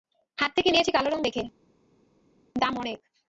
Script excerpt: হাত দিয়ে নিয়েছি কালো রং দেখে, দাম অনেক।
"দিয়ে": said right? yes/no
no